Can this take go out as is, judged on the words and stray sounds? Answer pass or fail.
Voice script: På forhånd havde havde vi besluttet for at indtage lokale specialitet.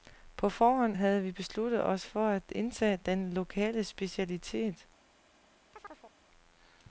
fail